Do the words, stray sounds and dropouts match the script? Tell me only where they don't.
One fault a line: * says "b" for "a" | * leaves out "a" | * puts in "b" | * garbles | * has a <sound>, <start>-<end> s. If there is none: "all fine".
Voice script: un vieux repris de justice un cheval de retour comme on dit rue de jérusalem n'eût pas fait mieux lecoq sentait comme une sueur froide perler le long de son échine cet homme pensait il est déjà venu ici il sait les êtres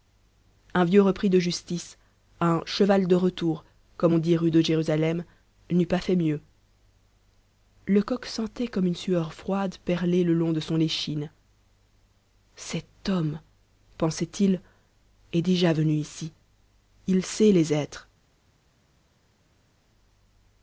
all fine